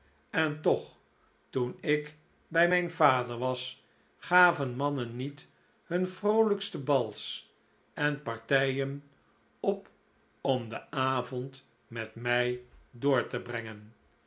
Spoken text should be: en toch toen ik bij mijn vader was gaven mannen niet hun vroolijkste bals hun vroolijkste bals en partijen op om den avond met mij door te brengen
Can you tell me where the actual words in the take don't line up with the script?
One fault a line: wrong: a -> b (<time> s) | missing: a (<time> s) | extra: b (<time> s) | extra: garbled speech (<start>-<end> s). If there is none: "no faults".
missing: hun vroolijkste bals (7.5 s)